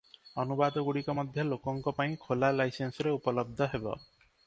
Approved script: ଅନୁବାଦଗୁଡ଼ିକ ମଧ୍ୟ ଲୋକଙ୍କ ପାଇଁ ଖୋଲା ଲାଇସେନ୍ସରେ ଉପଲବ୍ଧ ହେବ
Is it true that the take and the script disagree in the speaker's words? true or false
false